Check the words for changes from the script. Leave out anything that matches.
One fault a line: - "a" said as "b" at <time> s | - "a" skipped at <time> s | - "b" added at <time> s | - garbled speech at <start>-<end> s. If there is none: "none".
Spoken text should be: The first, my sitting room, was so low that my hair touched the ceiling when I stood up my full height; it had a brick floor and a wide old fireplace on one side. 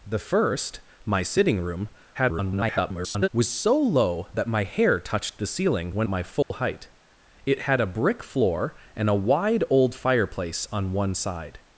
- garbled speech at 2.1-3.3 s
- "I stood up" skipped at 6.1 s